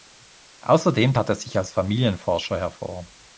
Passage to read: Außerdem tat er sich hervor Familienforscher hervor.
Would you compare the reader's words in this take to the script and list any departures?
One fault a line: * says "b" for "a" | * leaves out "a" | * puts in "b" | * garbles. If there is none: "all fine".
* says "als" for "hervor"